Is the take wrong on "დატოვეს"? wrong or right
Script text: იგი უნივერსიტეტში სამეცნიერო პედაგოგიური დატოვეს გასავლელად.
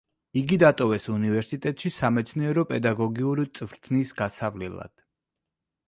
wrong